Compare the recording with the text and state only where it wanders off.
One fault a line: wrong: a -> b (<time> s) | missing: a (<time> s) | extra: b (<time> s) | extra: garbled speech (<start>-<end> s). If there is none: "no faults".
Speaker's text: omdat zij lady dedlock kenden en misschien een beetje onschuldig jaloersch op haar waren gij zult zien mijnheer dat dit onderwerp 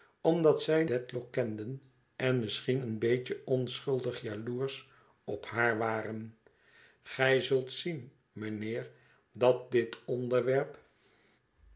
missing: lady (0.8 s)